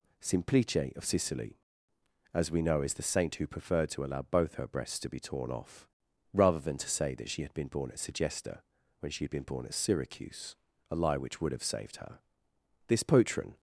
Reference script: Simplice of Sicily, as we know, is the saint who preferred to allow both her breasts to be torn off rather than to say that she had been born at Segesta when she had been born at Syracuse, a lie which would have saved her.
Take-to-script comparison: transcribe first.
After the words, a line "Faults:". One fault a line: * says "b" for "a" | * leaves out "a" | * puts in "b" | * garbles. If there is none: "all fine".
Simplice of Sicily, as we know, is the saint who preferred to allow both her breasts to be torn off rather than to say that she had been born at Segesta when she had been born at Syracuse, a lie which would have saved her. This patron
Faults:
* puts in "This patron"